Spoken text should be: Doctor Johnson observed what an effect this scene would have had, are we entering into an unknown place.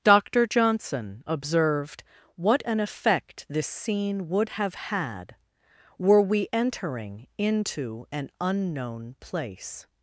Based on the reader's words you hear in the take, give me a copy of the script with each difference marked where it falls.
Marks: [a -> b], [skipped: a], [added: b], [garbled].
Doctor Johnson observed what an effect this scene would have had, [are -> were] we entering into an unknown place.